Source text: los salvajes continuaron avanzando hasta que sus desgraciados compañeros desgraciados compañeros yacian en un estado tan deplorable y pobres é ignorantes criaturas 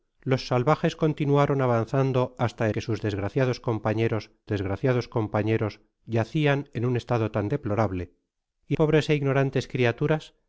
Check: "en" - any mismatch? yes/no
no